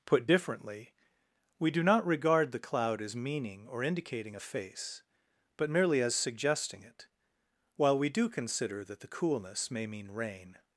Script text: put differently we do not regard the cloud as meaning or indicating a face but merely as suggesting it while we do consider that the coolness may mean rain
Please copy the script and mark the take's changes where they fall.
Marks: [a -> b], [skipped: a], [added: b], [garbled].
put differently we do not regard the cloud as meaning or indicating a face but merely as suggesting it while we do consider that the coolness may mean rain